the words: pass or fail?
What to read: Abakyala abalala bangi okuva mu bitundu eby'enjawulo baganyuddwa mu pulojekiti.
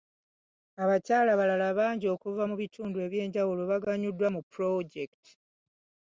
pass